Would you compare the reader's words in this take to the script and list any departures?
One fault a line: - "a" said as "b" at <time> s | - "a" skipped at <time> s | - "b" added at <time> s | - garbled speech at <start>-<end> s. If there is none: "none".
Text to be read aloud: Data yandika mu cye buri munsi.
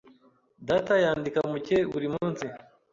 none